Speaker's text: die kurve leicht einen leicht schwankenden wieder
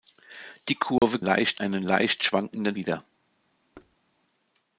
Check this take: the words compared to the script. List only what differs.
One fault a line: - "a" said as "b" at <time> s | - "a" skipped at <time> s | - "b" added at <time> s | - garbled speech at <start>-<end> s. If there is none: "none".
none